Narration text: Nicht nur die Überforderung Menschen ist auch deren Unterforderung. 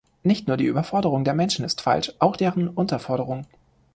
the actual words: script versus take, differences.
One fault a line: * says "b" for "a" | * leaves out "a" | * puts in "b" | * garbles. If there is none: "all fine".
* puts in "der"
* puts in "falsch"